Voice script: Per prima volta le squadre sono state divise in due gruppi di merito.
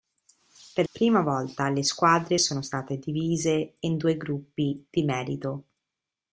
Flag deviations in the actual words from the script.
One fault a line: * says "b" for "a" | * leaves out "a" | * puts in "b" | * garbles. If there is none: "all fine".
all fine